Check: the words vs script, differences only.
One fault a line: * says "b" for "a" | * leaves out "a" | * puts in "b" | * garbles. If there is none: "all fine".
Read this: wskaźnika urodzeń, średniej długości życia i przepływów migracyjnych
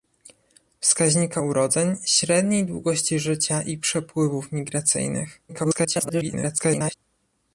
* garbles